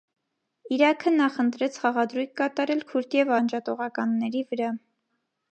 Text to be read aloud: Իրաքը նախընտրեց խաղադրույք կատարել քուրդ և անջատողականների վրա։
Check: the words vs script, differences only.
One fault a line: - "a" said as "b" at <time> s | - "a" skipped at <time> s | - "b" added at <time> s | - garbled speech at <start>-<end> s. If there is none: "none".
none